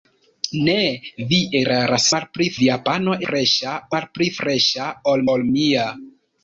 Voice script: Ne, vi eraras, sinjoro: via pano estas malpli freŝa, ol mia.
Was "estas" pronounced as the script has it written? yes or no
no